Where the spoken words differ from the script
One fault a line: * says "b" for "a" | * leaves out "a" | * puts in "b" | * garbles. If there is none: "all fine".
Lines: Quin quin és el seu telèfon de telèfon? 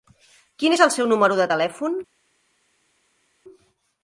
* leaves out "quin"
* says "número" for "telèfon"